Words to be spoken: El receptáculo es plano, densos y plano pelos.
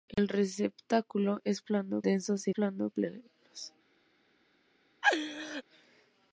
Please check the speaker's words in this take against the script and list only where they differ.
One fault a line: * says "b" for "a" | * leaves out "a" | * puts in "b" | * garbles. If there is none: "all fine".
all fine